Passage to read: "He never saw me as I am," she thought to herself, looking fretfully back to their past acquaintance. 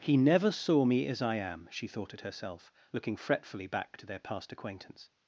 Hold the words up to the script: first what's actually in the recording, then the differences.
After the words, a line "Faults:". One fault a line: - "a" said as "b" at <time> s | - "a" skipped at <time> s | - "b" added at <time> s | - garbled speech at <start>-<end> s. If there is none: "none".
"He never saw me as I am," she thought at herself, looking fretfully back to their past acquaintance.
Faults:
- "to" said as "at" at 2.1 s